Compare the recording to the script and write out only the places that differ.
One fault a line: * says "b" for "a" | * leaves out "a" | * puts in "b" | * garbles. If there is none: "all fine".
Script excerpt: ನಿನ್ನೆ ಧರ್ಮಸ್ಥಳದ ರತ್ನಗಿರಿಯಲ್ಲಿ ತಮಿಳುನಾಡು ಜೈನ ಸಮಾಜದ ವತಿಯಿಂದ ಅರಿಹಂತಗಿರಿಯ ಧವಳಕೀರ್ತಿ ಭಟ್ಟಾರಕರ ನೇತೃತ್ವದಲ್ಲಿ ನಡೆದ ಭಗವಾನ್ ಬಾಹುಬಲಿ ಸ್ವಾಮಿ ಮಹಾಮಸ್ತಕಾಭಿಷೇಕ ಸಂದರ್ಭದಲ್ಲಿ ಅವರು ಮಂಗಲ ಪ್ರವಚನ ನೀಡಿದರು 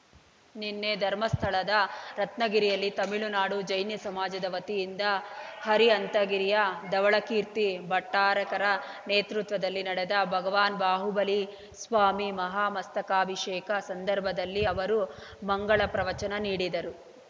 all fine